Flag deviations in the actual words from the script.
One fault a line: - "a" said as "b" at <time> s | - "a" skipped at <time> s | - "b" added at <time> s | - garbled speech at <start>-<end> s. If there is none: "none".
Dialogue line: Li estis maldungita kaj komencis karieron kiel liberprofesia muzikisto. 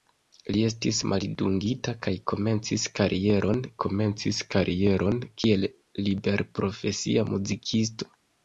- "komencis karieron" added at 3.8 s